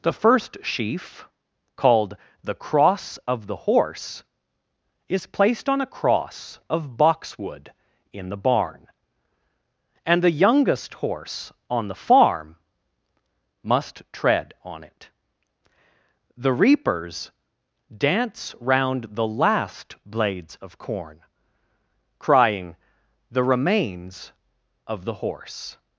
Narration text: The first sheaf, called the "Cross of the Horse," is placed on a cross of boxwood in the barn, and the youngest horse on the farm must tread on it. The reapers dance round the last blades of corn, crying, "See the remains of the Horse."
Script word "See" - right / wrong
wrong